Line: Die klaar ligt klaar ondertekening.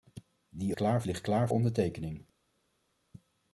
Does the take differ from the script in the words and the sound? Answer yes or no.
no